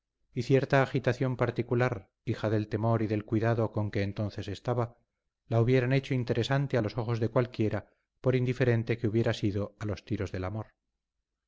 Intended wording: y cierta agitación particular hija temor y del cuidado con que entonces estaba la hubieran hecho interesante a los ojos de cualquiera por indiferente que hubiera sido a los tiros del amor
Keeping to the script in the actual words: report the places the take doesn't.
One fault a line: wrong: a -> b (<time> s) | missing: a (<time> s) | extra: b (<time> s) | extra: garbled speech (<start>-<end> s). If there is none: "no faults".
extra: del (2.5 s)